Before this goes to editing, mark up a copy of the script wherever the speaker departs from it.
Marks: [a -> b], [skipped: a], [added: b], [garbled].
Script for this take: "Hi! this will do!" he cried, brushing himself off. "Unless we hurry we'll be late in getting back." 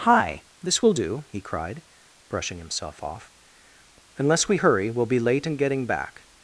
"Hi! this will do!" he cried, brushing himself off. "Unless we hurry we'll be late in getting back."